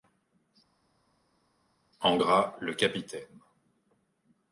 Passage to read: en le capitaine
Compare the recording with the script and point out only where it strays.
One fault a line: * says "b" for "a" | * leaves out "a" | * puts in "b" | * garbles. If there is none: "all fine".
* puts in "gras"